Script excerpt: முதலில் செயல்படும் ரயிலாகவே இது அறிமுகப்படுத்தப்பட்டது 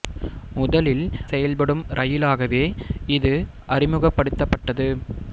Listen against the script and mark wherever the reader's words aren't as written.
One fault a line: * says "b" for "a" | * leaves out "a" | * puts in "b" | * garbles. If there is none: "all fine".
all fine